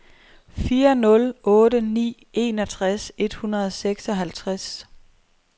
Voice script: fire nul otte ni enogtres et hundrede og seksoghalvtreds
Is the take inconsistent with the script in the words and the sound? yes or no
no